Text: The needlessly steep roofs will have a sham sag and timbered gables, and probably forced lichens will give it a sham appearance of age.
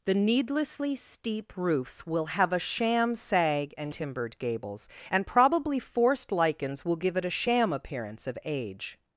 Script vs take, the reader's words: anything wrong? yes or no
no